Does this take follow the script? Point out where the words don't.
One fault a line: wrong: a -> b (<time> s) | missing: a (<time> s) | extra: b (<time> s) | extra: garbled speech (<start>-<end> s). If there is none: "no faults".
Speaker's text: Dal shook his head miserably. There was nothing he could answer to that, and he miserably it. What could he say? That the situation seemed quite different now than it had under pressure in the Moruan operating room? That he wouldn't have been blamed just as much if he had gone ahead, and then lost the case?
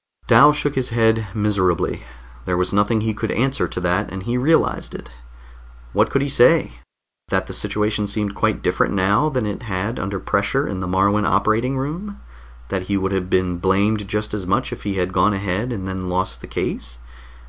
wrong: miserably -> realized (4.3 s)
wrong: wouldn't -> would (13.0 s)